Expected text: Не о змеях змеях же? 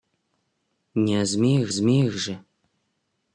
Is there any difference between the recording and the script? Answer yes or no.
no